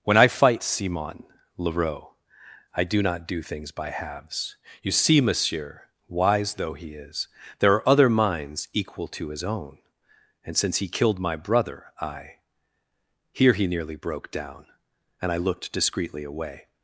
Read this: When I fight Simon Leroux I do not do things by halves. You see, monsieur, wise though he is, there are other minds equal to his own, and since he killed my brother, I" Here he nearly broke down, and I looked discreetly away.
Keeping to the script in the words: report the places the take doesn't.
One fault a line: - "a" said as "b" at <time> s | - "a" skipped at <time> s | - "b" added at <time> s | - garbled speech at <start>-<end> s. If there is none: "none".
none